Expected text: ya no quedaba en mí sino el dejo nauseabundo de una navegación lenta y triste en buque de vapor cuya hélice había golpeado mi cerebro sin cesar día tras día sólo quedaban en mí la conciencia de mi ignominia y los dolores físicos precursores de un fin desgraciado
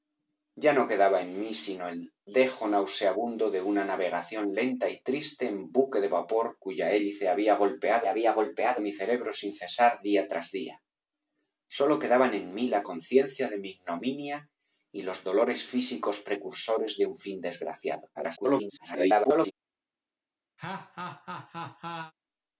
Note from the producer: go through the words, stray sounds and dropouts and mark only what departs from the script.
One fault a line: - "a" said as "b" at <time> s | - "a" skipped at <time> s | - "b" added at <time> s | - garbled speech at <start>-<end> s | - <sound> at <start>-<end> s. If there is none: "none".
- "había golpeado" added at 8.1 s
- garbled speech at 18.1-19.5 s
- laugh at 20.6-22.1 s